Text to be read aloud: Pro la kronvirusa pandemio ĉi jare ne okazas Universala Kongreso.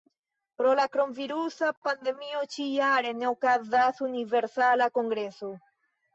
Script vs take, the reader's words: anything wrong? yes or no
no